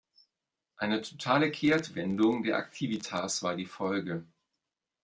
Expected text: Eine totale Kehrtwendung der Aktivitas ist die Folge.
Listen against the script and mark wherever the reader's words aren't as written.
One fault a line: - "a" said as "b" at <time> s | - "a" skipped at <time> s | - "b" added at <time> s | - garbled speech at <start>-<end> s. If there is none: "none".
- "ist" said as "war" at 3.4 s